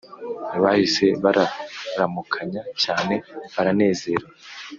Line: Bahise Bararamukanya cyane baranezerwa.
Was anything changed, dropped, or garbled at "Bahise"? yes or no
no